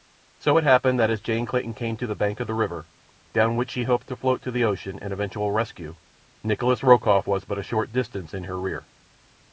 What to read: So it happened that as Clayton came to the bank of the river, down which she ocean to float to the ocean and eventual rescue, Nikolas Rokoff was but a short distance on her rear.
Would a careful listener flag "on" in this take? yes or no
yes